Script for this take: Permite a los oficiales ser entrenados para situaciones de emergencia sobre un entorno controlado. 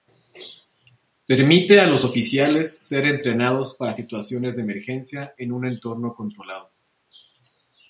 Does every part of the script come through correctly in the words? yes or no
no